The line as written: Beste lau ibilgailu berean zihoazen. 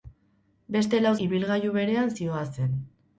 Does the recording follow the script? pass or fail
pass